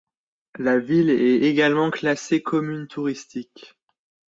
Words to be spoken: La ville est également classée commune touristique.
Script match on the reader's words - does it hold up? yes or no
yes